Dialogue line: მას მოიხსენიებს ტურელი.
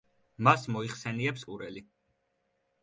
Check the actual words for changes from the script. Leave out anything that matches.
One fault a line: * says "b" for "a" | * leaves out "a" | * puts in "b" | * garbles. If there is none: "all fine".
all fine